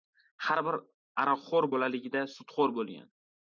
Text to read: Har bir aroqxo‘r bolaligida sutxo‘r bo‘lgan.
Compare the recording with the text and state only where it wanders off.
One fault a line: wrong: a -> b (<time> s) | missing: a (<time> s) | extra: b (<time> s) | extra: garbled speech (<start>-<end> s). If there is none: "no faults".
no faults